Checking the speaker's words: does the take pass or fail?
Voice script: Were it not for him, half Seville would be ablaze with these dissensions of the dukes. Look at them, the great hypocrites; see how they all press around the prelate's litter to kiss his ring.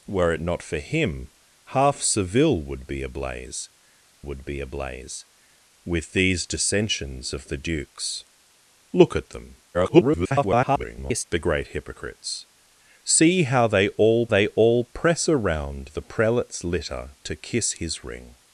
fail